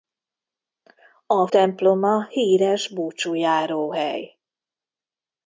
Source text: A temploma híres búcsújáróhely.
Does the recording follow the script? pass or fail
pass